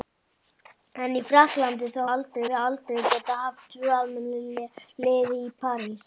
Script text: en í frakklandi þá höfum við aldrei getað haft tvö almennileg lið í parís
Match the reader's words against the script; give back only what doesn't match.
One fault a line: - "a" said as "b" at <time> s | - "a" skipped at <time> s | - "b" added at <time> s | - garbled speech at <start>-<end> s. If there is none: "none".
- "höfum" said as "aldrei" at 2.1 s